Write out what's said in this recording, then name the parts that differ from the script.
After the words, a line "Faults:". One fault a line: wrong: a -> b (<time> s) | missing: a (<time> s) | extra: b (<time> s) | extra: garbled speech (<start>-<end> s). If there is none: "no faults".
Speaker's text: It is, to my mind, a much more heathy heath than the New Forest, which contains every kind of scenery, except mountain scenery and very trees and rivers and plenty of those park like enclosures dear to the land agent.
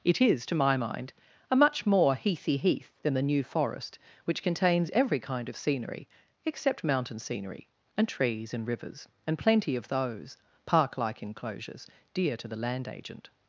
It is, to my mind, a much more heathy heath than the New Forest, which contains every kind of scenery, except mountain scenery and trees and rivers and plenty of those park like enclosures dear to the land agent.
Faults:
missing: very (8.1 s)